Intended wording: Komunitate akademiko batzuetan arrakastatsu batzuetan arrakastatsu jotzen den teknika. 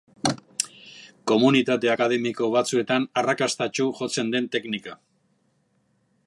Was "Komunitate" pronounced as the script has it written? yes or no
yes